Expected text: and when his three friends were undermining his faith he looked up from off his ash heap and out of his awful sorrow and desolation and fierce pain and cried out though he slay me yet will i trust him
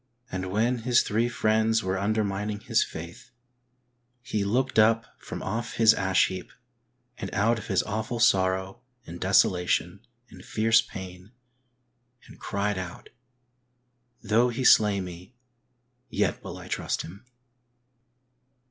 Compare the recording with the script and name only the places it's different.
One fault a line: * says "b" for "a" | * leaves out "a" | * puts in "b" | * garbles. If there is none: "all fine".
all fine